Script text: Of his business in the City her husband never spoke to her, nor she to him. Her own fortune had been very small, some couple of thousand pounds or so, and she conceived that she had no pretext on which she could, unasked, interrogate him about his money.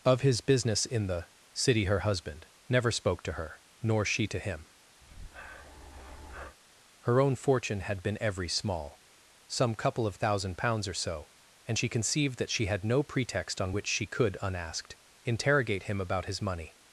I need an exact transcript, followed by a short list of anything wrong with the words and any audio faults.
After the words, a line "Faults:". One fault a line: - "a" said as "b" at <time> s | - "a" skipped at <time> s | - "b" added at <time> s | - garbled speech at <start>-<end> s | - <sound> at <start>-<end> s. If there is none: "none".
Of his business in the City her husband never spoke to her, nor she to him. Her own fortune had been every small, some couple of thousand pounds or so, and she conceived that she had no pretext on which she could, unasked, interrogate him about his money.
Faults:
- breath at 5.0-6.6 s
- "very" said as "every" at 8.2 s